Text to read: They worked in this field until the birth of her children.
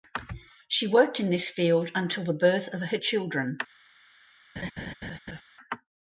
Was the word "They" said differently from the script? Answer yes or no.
yes